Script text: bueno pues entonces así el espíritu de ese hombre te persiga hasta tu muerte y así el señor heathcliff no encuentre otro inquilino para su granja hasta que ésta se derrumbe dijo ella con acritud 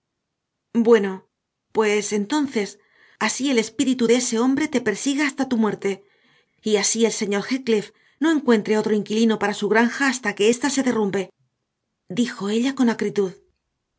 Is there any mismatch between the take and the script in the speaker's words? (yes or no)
no